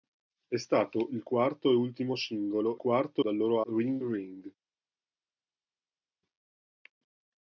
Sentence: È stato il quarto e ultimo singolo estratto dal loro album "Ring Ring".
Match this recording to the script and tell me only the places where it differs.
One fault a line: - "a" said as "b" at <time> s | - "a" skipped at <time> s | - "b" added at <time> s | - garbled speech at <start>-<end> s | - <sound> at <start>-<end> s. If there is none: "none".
- "estratto" said as "quarto" at 2.7 s
- "album" skipped at 3.6 s